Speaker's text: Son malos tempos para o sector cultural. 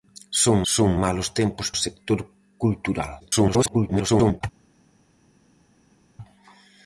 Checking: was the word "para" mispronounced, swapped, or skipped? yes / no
yes